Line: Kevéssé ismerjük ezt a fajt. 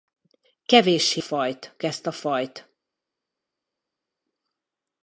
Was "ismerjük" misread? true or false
true